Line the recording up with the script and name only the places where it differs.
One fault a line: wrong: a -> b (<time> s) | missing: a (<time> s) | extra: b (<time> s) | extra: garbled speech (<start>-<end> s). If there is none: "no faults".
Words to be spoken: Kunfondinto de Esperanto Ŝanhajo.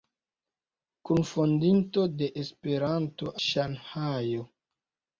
no faults